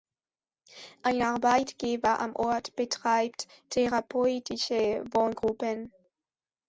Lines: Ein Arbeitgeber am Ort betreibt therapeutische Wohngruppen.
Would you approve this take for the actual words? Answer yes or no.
yes